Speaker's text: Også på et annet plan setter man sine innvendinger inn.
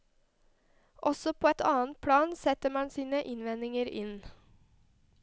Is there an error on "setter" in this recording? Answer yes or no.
no